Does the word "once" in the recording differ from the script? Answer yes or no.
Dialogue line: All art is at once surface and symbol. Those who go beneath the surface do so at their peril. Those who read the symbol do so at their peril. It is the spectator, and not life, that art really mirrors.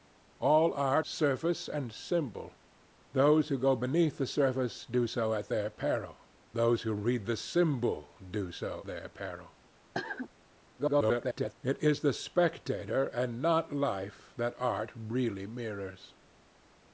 yes